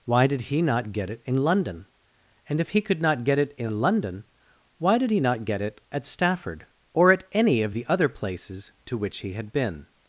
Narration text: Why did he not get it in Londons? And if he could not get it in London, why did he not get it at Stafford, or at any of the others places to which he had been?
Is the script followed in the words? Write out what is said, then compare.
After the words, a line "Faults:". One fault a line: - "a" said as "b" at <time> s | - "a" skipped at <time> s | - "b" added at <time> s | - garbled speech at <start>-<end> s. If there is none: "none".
Why did he not get it in London? And if he could not get it in London, why did he not get it at Stafford, or at any of the other places to which he had been?
Faults:
- "Londons" said as "London" at 1.4 s
- "others" said as "other" at 7.9 s